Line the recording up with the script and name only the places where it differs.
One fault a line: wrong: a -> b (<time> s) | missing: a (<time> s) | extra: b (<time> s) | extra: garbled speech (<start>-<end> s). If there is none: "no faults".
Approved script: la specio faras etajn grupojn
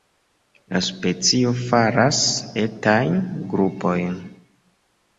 no faults